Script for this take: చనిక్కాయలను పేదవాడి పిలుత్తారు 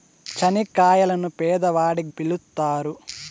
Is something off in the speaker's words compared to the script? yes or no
no